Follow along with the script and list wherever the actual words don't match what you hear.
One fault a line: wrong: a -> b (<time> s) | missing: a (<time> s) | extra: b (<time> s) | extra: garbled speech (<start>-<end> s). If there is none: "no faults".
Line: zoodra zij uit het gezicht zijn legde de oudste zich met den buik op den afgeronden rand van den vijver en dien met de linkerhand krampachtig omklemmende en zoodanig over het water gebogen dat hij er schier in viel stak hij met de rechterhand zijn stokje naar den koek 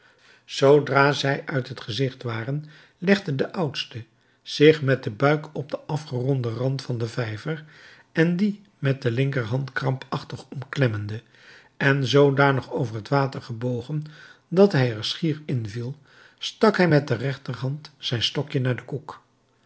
wrong: zijn -> waren (2.2 s)